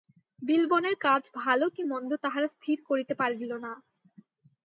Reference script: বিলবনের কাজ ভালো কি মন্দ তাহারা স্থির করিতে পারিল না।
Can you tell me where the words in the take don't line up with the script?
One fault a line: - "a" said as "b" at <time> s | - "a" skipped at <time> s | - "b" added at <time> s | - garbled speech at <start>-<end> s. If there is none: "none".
none